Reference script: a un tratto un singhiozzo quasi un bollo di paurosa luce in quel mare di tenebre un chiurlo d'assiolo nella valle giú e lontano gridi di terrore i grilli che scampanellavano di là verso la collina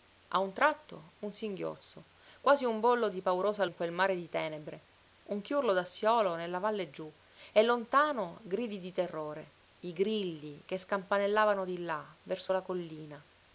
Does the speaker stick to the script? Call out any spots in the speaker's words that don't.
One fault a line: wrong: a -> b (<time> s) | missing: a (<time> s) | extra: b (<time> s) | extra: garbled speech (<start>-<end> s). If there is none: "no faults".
missing: luce (3.6 s)